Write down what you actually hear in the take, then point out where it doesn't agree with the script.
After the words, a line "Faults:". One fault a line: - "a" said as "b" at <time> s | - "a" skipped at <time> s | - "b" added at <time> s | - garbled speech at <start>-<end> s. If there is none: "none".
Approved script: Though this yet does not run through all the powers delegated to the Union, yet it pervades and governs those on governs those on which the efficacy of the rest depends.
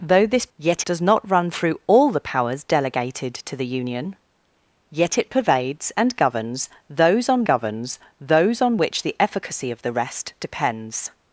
Though this yet does not run through all the powers delegated to the Union, yet it pervades and governs those on governs those on which the efficacy of the rest depends.
Faults:
none